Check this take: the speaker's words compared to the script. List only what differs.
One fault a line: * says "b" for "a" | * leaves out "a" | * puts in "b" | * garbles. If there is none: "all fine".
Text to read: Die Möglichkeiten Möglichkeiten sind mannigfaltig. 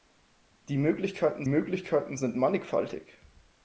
all fine